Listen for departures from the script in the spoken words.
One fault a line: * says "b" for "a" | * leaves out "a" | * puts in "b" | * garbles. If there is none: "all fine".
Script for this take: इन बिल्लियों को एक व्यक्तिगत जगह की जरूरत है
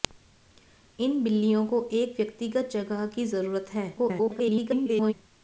* garbles